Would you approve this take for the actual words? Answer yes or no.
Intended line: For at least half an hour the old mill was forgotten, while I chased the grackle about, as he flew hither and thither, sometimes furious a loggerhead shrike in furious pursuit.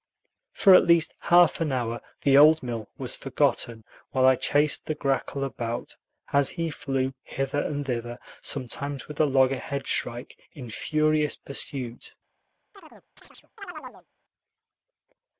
no